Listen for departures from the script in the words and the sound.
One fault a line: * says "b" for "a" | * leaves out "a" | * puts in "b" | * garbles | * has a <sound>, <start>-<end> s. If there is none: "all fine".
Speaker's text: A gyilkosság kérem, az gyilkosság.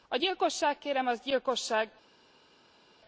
all fine